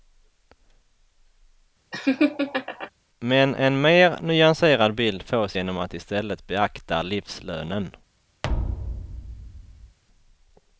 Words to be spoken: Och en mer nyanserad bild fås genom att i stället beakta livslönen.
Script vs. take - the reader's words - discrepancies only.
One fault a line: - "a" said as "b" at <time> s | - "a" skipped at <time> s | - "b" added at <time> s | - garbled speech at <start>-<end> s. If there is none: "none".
- "Och" said as "Men" at 3.2 s